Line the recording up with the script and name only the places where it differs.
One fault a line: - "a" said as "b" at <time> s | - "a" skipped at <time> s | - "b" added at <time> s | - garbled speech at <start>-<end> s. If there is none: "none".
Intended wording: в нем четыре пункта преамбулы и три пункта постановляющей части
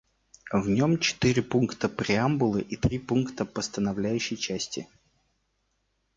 none